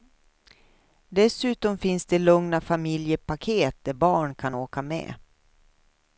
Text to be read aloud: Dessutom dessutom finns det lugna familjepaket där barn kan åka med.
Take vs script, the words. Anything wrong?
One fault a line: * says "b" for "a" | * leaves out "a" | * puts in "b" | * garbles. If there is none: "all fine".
* leaves out "dessutom"